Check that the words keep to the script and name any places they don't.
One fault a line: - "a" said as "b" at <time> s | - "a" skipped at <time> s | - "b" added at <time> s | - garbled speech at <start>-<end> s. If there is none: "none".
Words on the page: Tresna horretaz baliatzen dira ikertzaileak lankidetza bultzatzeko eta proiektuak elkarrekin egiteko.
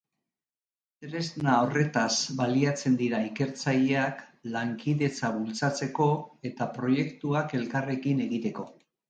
none